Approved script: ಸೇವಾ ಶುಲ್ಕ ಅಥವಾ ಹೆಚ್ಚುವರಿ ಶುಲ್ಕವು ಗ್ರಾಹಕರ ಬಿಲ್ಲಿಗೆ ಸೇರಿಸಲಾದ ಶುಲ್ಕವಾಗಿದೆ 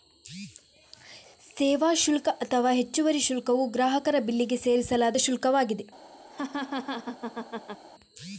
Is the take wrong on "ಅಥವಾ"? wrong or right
right